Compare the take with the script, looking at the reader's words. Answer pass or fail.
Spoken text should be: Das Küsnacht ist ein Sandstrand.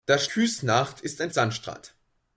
pass